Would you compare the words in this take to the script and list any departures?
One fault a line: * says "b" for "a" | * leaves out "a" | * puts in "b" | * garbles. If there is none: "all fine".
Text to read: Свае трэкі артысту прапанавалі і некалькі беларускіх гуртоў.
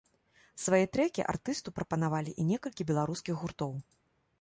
all fine